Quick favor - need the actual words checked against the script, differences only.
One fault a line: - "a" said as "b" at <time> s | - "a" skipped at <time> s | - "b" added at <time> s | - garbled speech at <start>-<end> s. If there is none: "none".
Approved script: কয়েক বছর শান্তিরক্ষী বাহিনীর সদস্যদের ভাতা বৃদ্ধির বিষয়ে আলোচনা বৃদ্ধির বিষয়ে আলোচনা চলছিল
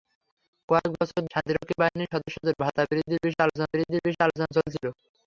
none